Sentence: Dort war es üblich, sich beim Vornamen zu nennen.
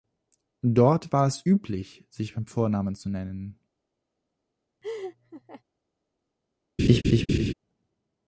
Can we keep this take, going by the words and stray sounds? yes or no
no